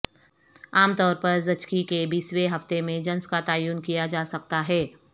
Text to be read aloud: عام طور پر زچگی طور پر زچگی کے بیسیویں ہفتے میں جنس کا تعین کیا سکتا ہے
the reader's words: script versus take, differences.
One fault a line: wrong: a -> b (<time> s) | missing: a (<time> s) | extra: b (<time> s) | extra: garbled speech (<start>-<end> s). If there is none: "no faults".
missing: طور پر زچگی (1.8 s)
extra: جا (4.1 s)